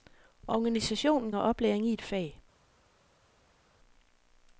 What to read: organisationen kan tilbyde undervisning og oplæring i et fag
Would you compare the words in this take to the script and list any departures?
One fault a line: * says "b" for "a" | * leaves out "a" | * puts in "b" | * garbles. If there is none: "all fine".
* leaves out "kan tilbyde undervisning"